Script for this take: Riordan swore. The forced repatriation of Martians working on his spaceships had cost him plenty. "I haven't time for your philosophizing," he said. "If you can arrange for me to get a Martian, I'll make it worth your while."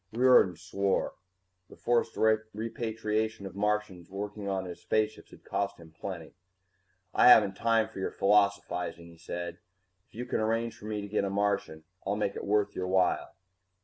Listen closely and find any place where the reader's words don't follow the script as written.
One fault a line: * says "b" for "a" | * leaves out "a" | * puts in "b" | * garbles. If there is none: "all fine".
all fine